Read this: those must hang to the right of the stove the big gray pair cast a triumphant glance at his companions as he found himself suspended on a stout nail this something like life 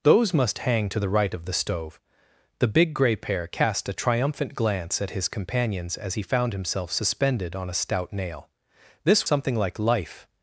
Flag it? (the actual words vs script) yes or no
no